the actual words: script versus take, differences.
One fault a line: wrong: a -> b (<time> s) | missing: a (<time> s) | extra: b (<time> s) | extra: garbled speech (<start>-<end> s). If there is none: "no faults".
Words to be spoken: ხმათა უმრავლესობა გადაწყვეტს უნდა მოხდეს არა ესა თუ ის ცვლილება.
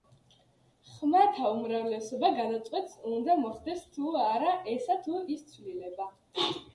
extra: თუ (4.0 s)